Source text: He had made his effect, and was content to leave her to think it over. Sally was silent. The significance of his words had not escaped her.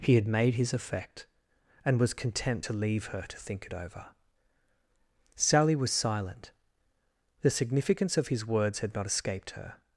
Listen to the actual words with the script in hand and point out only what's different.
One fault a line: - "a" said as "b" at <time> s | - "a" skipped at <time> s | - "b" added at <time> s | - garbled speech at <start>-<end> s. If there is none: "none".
none